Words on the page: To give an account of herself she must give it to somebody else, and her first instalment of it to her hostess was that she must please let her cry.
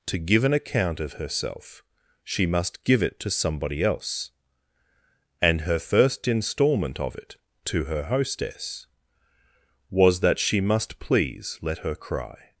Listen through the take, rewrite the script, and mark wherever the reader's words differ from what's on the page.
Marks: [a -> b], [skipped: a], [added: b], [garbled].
To give an account of herself she must give it to somebody else, and her first instalment of it to her hostess was that she must please let her cry.